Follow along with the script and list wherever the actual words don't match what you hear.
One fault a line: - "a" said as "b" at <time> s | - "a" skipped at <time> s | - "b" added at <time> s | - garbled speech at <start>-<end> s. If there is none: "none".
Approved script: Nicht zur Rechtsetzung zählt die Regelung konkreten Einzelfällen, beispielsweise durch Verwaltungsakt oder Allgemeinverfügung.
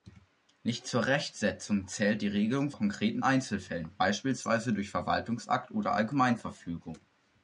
none